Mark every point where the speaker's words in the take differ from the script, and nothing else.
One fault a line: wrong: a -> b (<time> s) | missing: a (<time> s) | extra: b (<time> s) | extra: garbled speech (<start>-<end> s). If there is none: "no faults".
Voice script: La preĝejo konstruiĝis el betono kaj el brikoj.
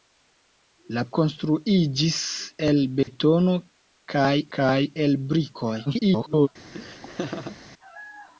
missing: preĝejo (1.0 s)
extra: kaj (4.6 s)
extra: garbled speech (5.9-6.5 s)